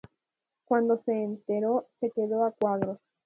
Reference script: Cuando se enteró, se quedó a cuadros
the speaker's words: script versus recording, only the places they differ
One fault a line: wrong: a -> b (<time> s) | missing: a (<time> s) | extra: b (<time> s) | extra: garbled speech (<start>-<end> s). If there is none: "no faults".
no faults